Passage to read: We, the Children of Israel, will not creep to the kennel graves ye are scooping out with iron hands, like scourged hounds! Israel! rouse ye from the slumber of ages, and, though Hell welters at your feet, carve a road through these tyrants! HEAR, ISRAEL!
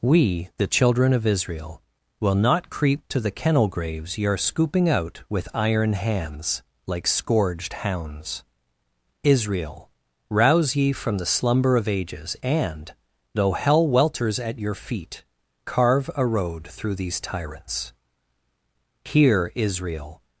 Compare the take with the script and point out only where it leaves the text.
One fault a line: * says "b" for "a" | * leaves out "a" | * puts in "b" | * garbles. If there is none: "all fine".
all fine